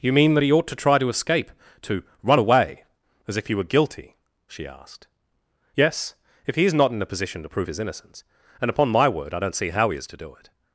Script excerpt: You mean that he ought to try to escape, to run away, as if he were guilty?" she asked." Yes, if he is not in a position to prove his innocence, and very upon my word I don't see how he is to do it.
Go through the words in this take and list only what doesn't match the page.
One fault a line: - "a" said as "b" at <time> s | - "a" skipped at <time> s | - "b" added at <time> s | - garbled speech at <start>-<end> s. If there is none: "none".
- "very" skipped at 8.7 s